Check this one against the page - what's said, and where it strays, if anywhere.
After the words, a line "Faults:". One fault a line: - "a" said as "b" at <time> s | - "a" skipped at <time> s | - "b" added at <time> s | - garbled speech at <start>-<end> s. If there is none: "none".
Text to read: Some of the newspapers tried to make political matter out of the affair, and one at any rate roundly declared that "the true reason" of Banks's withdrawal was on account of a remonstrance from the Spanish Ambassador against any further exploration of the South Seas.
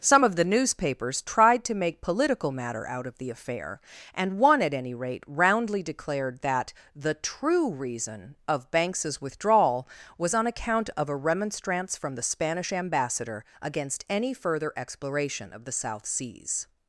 Some of the newspapers tried to make political matter out of the affair, and one at any rate roundly declared that "the true reason" of Banks's withdrawal was on account of a remonstrance from the Spanish Ambassador against any further exploration of the South Seas.
Faults:
none